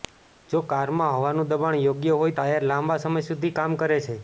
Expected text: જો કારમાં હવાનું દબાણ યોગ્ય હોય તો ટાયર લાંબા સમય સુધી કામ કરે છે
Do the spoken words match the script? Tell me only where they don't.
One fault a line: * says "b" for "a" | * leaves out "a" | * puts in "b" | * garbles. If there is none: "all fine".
* leaves out "તો"